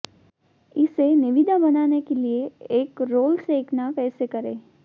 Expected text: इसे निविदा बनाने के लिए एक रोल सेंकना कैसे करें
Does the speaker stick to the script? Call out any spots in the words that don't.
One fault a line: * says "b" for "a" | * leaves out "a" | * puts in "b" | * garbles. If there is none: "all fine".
all fine